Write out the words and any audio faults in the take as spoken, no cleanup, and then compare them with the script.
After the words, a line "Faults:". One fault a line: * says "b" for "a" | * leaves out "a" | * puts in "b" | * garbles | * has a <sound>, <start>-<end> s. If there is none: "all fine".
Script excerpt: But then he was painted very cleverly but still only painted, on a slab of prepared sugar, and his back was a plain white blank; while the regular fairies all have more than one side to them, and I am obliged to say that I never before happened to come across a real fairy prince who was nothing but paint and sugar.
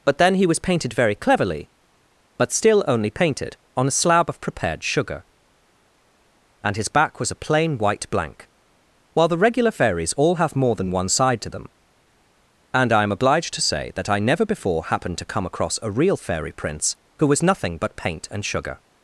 But then he was painted very cleverly but still only painted, on a slab of prepared sugar, and his back was a plain white blank; while the regular fairies all have more than one side to them, and I am obliged to say that I never before happened to come across a real fairy prince who was nothing but paint and sugar.
Faults:
all fine